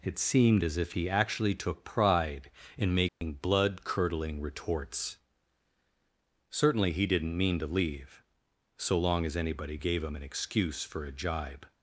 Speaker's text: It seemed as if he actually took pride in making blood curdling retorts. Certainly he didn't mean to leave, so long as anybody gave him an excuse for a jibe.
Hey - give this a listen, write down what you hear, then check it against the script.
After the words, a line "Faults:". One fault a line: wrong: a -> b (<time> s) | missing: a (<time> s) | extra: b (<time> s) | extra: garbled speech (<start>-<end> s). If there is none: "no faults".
It seemed as if he actually took pride in making blood curdling retorts. Certainly he didn't mean to leave, so long as anybody gave him an excuse for a jibe.
Faults:
no faults